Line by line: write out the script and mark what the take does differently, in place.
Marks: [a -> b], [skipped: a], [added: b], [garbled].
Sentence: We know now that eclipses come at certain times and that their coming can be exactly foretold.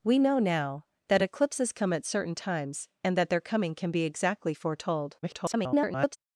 We know now that eclipses come at certain times and that their coming can be exactly foretold. [garbled]